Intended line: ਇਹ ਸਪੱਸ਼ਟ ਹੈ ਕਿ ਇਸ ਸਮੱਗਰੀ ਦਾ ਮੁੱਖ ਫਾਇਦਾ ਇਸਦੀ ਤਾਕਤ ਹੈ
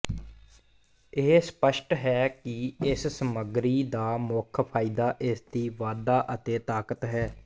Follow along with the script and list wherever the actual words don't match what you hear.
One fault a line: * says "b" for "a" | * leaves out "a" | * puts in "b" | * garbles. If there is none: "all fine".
* puts in "ਵਾਧਾ ਅਤੇ"